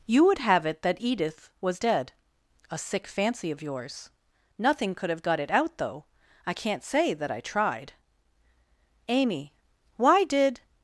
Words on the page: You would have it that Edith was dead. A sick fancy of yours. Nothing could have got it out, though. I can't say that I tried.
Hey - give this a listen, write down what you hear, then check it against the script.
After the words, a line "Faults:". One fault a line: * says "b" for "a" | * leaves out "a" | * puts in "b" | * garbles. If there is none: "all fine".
You would have it that Edith was dead. A sick fancy of yours. Nothing could have got it out, though. I can't say that I tried. Amy, why did
Faults:
* puts in "Amy why did"